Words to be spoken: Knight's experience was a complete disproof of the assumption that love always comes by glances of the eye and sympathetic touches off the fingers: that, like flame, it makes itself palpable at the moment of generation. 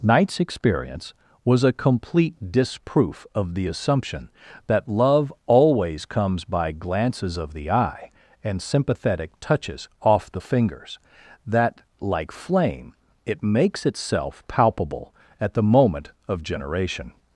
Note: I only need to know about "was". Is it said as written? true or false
true